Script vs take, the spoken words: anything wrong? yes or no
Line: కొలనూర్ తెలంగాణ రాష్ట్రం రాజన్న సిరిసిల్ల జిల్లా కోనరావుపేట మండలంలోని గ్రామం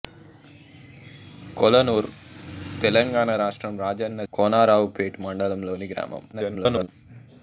yes